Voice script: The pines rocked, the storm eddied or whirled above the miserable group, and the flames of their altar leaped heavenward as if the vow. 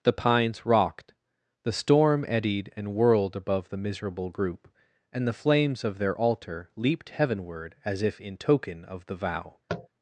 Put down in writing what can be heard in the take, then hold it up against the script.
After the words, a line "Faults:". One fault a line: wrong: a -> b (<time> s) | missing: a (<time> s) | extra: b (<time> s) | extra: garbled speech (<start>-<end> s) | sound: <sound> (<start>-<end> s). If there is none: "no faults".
The pines rocked, the storm eddied and whirled above the miserable group, and the flames of their altar leaped heavenward as if in token of the vow.
Faults:
wrong: or -> and (2.8 s)
extra: in token of (8.2 s)
sound: tap (9.7-9.9 s)